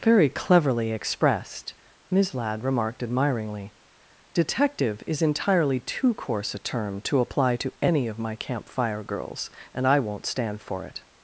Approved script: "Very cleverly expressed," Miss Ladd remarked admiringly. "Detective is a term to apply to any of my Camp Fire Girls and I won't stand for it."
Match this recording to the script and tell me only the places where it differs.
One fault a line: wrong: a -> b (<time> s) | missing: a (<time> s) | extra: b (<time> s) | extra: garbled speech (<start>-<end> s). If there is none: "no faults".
extra: entirely too coarse (5.2 s)